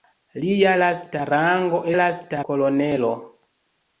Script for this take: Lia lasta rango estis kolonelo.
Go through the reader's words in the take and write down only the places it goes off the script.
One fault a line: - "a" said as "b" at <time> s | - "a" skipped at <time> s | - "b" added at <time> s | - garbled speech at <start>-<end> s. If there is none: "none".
- "estis" said as "lasta" at 2.0 s